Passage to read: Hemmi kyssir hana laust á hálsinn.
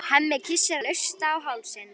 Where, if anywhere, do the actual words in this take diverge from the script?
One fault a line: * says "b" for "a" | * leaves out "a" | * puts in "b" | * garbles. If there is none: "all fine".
* leaves out "hana"